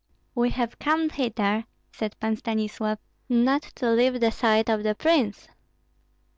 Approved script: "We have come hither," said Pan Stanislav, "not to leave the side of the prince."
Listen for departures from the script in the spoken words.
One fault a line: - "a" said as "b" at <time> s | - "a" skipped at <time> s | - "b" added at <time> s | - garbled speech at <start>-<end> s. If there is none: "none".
none